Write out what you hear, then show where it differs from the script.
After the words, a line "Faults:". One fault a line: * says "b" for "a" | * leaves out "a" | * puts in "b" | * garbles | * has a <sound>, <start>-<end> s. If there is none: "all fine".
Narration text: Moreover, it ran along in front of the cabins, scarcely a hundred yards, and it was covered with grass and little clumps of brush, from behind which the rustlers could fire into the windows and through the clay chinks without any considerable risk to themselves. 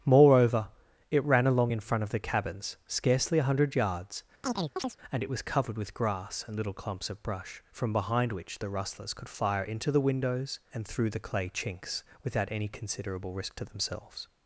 Moreover, it ran along in front of the cabins, scarcely a hundred yards, and it was covered with grass and little clumps of brush, from behind which the rustlers could fire into the windows and through the clay chinks without any considerable risk to themselves.
Faults:
* has a chirp, 4.4-5.0 s